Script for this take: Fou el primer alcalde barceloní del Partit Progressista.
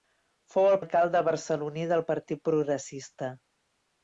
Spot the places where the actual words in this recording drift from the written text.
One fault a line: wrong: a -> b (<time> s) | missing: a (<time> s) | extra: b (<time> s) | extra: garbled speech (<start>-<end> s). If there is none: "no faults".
missing: primer (0.8 s)